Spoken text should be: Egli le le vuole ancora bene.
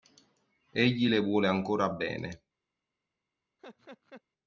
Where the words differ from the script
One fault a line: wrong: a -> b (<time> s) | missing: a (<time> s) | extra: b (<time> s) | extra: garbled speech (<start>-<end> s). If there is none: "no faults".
missing: le (1.2 s)